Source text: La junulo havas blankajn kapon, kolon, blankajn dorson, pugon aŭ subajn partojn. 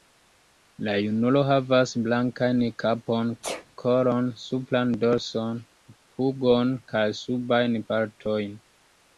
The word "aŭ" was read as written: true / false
false